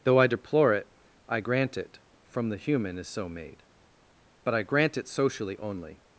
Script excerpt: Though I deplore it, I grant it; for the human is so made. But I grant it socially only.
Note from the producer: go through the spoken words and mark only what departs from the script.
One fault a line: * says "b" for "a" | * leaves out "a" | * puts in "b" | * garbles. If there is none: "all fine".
* says "from" for "for"